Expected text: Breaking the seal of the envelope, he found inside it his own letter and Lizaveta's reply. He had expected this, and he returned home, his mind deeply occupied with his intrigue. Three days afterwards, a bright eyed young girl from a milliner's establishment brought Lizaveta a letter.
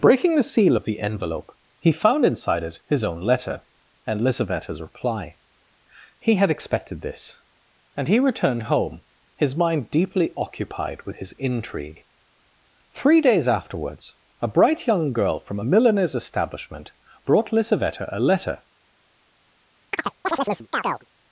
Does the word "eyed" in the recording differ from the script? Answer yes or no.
yes